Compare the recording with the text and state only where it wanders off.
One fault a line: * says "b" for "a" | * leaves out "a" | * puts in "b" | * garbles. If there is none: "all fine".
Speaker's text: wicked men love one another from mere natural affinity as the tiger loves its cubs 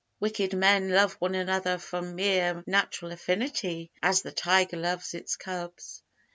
all fine